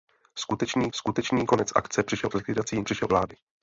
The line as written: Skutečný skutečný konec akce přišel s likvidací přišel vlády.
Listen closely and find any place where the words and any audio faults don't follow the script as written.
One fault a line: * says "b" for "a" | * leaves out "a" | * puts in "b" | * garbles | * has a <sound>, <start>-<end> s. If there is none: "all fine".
all fine